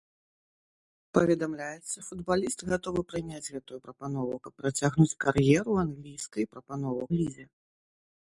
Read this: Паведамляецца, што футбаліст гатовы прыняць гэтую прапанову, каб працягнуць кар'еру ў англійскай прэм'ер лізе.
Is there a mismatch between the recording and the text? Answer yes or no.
yes